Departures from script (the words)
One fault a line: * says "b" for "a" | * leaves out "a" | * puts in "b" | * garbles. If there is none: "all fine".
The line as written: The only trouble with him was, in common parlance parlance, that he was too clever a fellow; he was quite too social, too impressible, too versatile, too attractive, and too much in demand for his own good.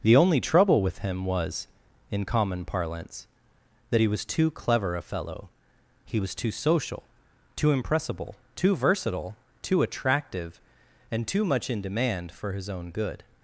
* leaves out "parlance"
* leaves out "quite"